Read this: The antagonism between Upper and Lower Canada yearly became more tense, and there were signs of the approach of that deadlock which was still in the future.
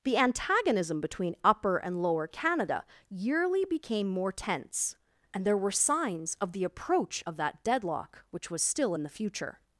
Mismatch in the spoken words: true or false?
false